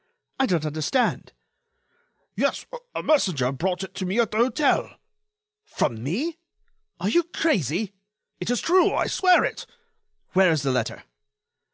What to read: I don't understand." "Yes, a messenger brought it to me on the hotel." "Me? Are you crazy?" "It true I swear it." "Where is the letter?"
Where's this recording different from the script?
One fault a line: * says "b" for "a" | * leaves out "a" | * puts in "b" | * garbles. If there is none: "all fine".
* says "at" for "on"
* puts in "From"
* puts in "is"